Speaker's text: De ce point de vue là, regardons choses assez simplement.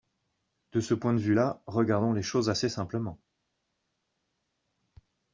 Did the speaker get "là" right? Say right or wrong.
right